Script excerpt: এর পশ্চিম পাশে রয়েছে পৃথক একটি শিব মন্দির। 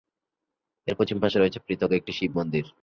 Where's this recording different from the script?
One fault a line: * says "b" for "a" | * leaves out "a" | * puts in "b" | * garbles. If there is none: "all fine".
all fine